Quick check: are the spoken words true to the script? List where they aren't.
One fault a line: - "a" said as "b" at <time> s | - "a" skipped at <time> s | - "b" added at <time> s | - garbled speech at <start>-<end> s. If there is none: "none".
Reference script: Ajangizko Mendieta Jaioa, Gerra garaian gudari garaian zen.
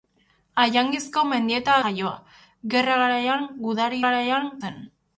none